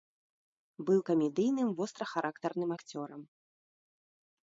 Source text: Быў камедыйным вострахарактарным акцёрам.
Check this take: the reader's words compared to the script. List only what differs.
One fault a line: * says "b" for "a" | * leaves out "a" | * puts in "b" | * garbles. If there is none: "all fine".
all fine